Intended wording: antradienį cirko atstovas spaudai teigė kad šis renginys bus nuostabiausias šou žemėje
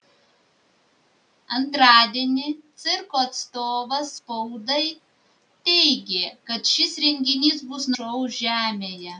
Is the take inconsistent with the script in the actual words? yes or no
yes